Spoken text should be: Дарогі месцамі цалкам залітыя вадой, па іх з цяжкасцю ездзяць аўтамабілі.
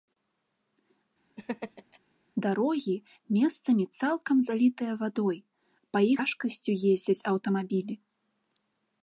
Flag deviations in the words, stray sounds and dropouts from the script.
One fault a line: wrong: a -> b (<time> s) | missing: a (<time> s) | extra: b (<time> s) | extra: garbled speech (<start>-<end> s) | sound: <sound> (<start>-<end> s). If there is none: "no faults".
sound: laugh (1.4-2.0 s)
missing: з (6.2 s)